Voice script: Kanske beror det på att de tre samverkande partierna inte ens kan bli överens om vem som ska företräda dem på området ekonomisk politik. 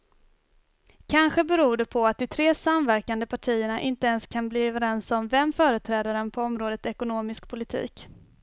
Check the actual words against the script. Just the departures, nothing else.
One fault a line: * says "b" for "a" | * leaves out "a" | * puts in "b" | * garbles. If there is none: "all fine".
* leaves out "som ska"